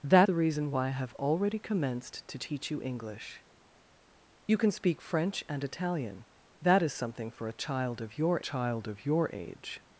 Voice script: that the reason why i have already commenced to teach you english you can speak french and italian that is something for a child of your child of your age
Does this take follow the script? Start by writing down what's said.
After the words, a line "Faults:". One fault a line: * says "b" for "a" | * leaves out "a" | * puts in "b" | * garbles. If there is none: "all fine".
that the reason why i have already commenced to teach you english you can speak french and italian that is something for a child of your child of your age
Faults:
all fine